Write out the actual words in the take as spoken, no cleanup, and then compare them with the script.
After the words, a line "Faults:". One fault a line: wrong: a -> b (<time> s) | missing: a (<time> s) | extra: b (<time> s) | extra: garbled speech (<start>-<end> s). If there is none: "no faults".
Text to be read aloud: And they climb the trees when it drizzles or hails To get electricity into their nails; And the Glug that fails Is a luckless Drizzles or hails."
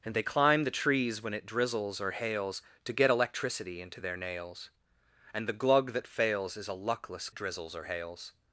And they climb the trees when it drizzles or hails To get electricity into their nails; And the Glug that fails Is a luckless Drizzles or hails."
Faults:
no faults